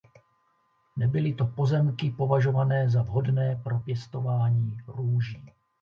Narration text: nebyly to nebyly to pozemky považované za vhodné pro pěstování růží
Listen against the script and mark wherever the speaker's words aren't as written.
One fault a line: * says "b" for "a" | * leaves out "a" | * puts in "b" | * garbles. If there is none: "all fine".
* leaves out "nebyly to"